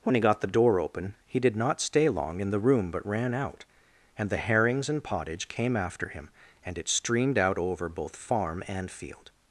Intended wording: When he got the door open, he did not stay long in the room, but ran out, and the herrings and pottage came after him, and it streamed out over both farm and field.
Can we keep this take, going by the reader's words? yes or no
yes